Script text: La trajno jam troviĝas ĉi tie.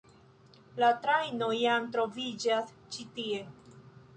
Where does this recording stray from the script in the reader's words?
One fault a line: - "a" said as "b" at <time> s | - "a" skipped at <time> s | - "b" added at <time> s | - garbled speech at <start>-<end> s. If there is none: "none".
none